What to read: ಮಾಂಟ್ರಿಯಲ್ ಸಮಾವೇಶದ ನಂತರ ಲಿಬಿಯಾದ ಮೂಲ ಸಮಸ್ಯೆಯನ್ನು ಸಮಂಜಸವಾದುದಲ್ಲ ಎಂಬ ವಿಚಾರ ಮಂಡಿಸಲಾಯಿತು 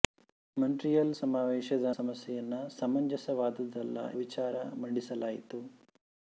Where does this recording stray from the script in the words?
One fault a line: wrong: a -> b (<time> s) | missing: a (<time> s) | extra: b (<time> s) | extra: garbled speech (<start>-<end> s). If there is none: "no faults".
missing: ನಂತರ ಲಿಬಿಯಾದ ಮೂಲ (1.9 s)
missing: ಎಂಬ (4.0 s)